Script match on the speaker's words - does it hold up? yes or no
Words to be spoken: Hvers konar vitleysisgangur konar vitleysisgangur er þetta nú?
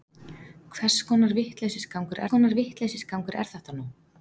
yes